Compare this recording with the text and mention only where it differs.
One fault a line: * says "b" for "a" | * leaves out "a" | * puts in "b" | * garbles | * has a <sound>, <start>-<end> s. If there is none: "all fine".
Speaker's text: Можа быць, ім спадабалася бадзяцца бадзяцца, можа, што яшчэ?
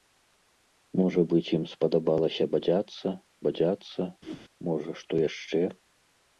* has a whoosh, 4.2-4.4 s